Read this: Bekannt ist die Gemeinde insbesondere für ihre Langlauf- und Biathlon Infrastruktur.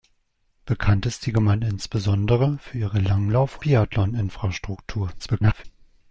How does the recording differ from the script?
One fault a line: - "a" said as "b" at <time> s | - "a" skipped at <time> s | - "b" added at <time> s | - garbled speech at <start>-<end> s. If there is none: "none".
- "und" skipped at 3.6 s
- garbled speech at 5.2-5.7 s